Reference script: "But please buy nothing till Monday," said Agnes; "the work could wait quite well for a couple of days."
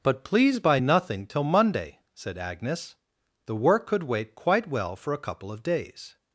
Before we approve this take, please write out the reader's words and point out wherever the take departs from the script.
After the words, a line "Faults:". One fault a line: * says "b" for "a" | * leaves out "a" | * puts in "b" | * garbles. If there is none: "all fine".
"But please buy nothing till Monday," said Agnes; "the work could wait quite well for a couple of days."
Faults:
all fine